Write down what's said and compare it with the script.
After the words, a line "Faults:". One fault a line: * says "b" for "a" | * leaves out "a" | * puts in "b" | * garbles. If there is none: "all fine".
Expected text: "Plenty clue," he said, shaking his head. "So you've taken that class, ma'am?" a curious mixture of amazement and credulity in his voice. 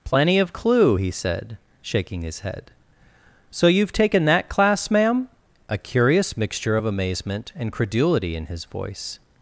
"Plenty of clue," he said, shaking his head. "So you've taken that class, ma'am?" a curious mixture of amazement and credulity in his voice.
Faults:
* puts in "of"